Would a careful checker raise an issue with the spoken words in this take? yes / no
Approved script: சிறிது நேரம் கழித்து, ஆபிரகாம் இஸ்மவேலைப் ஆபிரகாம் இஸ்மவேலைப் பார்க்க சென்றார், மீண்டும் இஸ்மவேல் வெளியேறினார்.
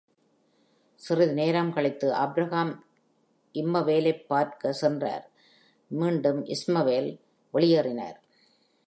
yes